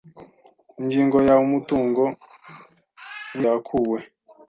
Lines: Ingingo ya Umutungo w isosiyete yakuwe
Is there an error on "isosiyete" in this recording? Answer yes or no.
yes